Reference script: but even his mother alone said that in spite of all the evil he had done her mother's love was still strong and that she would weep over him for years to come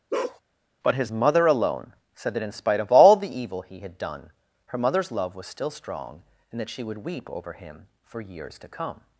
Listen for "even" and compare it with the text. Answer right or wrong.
wrong